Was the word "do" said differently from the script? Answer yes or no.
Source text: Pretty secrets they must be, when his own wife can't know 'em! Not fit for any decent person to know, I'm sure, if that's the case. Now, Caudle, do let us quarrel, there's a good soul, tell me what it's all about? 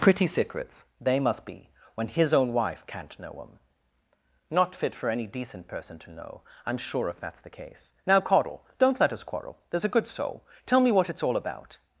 yes